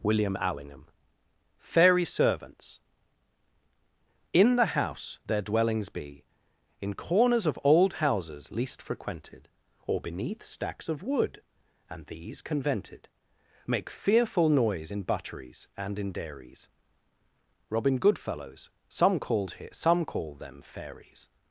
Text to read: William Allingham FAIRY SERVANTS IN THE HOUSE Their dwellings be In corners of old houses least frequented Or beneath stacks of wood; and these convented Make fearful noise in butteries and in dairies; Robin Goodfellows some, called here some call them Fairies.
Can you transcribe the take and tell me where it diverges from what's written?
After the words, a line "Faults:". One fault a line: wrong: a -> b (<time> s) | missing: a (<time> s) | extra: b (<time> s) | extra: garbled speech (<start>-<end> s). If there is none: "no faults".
William Allingham FAIRY SERVANTS IN THE HOUSE Their dwellings be In corners of old houses least frequented Or beneath stacks of wood; and these convented Make fearful noise in butteries and in dairies; Robin Goodfellows some, called here some call them Fairies.
Faults:
no faults